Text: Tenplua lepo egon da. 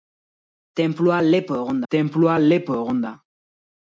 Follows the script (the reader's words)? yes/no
no